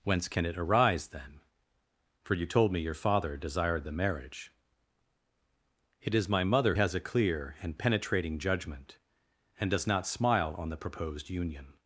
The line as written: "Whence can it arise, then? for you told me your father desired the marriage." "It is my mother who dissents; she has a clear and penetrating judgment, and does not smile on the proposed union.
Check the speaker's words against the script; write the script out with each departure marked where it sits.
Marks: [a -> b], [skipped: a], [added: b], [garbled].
"Whence can it arise, then? for you told me your father desired the marriage." "It is my mother [skipped: who dissents; she] has a clear and penetrating judgment, and does not smile on the proposed union.